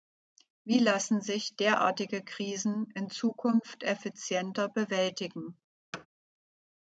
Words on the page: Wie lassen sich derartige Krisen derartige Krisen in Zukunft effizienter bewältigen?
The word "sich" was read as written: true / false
true